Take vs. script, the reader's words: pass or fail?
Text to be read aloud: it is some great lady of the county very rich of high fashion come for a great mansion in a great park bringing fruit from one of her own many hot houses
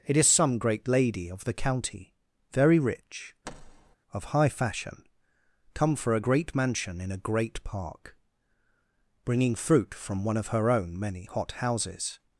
pass